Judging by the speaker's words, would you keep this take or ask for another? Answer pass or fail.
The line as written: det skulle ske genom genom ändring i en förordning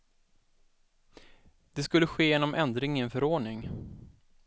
fail